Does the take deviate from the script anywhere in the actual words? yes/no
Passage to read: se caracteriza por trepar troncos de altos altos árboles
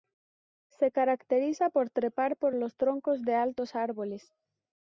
yes